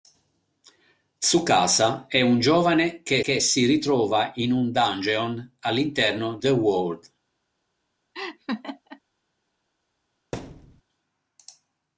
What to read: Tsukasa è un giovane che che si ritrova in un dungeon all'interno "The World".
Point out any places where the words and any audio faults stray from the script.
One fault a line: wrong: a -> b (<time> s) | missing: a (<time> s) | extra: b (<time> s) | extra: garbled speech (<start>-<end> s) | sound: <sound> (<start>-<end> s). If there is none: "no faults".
sound: laugh (8.1-9.0 s)
sound: thud (10.3-10.8 s)